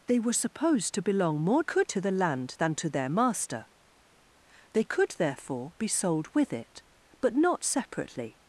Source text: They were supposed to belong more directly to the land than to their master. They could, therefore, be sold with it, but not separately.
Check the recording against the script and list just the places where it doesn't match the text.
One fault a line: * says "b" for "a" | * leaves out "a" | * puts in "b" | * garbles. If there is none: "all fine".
* says "could" for "directly"